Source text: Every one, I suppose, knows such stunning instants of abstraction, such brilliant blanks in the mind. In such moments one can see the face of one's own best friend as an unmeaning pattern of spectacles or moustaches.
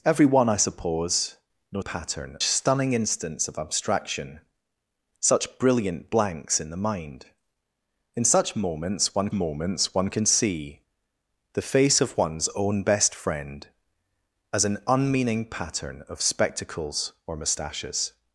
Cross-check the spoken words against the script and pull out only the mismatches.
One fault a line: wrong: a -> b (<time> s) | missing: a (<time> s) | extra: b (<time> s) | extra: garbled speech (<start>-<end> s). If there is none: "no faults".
wrong: such -> pattern (1.8 s)
extra: moments one (9.3 s)